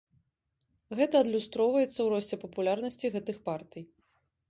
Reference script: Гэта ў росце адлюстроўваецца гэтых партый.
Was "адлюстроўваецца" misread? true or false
true